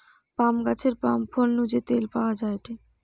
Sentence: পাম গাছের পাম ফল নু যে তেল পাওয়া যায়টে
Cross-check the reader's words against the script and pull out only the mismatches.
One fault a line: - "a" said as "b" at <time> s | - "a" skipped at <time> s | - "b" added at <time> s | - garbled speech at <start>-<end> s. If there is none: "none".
none